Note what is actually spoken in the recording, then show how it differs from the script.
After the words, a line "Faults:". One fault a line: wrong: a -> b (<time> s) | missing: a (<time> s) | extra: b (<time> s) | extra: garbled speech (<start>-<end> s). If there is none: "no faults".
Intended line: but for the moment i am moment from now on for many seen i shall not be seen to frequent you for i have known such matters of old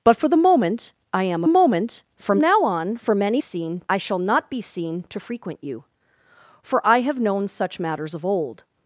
but for the moment i am moment from now on for many seen i shall not be seen to frequent you for i have known such matters of old
Faults:
no faults